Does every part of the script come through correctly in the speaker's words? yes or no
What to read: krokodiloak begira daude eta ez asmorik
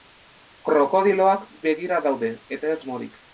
yes